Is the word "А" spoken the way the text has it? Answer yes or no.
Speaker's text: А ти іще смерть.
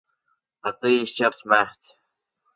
yes